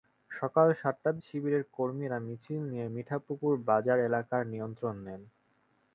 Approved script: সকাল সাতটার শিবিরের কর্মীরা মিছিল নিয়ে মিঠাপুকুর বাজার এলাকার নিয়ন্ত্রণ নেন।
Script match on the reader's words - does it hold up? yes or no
yes